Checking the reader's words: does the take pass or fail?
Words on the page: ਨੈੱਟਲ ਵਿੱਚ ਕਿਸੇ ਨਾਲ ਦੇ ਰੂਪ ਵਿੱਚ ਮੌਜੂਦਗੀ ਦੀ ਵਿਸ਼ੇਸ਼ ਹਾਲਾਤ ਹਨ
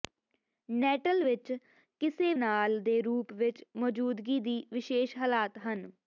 pass